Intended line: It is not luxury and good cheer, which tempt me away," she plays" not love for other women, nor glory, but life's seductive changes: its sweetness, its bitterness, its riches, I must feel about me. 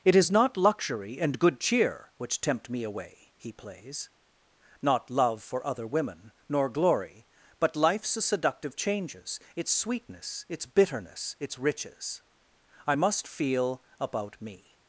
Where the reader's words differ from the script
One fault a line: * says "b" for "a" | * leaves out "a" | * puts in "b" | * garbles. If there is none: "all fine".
* says "he" for "she"